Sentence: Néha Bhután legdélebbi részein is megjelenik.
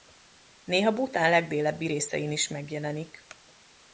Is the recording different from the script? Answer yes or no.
no